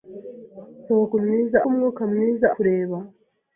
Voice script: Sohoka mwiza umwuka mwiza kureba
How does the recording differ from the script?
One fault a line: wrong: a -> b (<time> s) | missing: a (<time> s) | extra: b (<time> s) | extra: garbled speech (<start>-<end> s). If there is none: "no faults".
no faults